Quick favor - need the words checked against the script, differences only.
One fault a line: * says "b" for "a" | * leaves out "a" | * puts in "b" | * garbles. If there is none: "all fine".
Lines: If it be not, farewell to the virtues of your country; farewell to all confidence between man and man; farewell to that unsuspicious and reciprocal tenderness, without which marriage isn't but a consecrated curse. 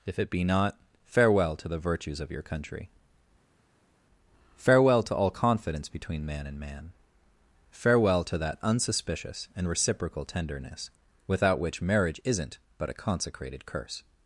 all fine